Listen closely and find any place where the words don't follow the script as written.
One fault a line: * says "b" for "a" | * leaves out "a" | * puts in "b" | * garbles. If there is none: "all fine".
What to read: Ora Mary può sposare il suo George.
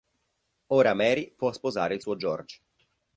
all fine